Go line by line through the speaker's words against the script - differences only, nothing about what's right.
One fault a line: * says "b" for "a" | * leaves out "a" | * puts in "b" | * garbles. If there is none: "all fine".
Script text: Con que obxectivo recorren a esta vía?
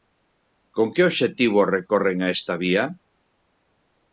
all fine